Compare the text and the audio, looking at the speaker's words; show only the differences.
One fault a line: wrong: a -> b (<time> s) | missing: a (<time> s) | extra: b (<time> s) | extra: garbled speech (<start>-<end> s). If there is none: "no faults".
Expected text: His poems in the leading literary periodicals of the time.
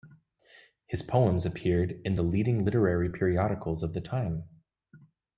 extra: appeared (1.4 s)